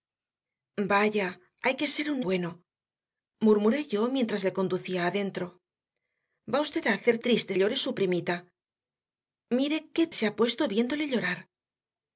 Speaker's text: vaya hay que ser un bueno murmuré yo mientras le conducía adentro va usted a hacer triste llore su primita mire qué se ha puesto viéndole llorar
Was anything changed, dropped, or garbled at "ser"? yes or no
no